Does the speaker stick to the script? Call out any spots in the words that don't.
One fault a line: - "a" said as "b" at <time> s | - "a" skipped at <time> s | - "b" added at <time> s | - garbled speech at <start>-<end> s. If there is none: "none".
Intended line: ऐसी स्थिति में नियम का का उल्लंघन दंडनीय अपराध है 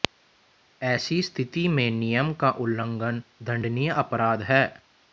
- "का" skipped at 2.5 s